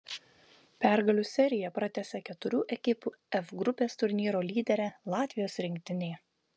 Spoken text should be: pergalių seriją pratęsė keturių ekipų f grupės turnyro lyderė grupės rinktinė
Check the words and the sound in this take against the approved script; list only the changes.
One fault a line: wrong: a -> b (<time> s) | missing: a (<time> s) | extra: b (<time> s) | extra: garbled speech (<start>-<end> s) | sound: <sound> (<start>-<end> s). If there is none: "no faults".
wrong: grupės -> latvijos (5.2 s)